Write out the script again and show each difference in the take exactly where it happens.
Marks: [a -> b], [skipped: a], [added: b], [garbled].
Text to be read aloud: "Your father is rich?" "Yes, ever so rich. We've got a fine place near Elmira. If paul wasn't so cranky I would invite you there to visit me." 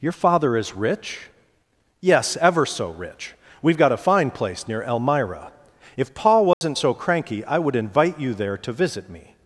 "Your father is rich?" "Yes, ever so rich. We've got a fine place near Elmira. If paul wasn't so cranky I would invite you there to visit me."